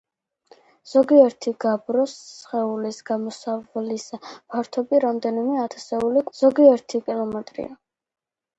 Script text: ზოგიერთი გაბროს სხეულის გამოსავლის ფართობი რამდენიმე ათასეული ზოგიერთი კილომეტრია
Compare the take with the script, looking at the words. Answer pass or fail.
pass